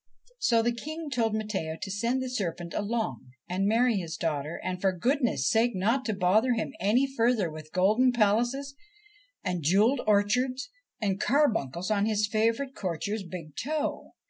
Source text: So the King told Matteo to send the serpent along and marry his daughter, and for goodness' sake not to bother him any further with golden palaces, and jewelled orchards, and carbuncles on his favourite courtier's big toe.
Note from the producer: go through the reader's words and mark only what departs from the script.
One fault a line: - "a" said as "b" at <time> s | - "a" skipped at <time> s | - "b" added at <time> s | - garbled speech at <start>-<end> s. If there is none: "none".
none